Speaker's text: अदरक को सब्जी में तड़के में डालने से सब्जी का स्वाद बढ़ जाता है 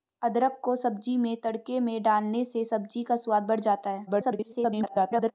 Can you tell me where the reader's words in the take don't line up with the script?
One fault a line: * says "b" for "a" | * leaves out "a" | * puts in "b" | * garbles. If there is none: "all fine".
* garbles